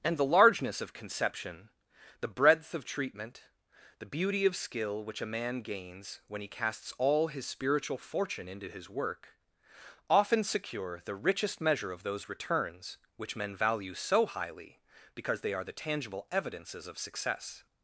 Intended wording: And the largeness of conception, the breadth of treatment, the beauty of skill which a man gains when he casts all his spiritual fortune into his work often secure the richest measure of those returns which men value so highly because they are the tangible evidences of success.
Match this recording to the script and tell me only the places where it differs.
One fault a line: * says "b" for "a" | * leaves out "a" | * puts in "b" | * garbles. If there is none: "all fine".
all fine